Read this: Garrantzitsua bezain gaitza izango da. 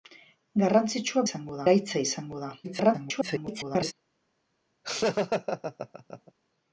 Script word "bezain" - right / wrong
wrong